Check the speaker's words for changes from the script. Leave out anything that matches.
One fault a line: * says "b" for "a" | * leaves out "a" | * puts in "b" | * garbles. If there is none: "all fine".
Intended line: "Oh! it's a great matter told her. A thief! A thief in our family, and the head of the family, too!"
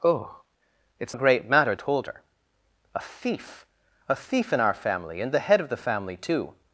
all fine